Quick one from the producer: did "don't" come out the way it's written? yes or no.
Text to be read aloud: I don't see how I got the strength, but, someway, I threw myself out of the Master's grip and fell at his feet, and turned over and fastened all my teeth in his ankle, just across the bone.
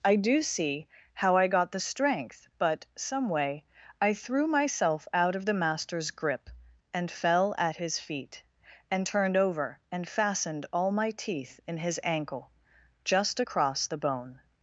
no